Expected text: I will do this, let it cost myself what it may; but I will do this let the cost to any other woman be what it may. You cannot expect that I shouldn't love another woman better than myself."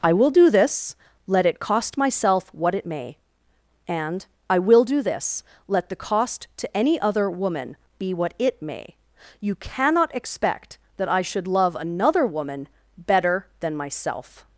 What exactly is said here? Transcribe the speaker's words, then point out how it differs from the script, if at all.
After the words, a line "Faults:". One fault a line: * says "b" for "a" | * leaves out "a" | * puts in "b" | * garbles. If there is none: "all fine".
I will do this, let it cost myself what it may; and I will do this let the cost to any other woman be what it may. You cannot expect that I should love another woman better than myself."
Faults:
* says "and" for "but"
* says "should" for "shouldn't"